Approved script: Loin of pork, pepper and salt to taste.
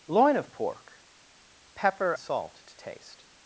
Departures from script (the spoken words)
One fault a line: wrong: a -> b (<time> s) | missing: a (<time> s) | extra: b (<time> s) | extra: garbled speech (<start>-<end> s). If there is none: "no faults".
missing: and (2.1 s)